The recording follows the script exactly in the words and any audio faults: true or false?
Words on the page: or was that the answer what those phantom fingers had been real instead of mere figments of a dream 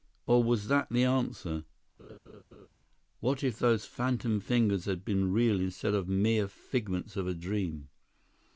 false